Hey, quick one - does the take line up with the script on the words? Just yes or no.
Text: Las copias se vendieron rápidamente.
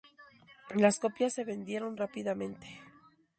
yes